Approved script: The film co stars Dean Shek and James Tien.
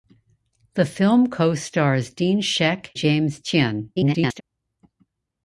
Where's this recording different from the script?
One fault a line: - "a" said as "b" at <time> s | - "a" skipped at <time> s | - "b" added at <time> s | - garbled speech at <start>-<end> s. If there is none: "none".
- "and" skipped at 3.0 s
- garbled speech at 4.0-4.4 s